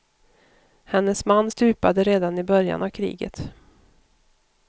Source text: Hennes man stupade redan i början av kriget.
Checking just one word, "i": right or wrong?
right